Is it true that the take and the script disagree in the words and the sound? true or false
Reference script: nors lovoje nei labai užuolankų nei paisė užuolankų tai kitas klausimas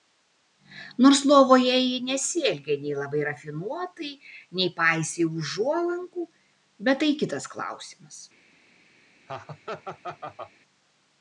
true